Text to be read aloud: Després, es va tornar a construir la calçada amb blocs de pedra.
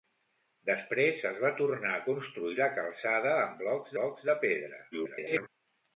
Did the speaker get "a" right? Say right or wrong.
right